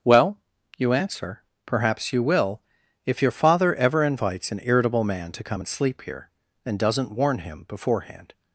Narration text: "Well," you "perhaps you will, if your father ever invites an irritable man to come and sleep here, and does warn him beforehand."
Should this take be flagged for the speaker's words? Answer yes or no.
yes